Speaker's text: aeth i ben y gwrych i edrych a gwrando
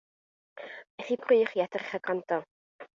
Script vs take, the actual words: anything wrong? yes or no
yes